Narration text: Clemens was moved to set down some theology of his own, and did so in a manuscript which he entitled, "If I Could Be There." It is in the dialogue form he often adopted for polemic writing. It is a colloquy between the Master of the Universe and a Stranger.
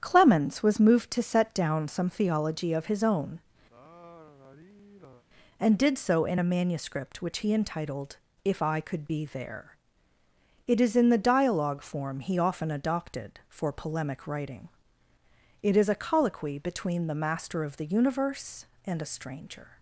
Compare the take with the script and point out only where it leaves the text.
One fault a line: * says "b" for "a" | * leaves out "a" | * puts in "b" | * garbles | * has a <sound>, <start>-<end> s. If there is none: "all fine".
* has a sigh, 3.7-5.2 s